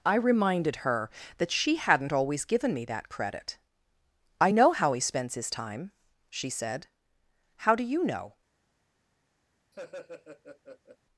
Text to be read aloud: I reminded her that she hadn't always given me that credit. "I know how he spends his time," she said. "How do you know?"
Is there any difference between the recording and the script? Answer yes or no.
no